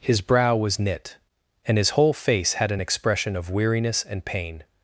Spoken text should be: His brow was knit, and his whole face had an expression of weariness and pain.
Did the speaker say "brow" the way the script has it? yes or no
yes